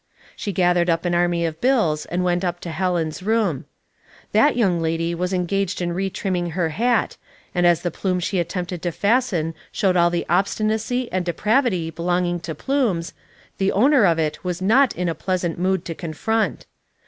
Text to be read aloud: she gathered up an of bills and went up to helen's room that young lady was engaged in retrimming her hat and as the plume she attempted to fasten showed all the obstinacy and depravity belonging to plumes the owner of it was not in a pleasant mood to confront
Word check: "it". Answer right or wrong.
right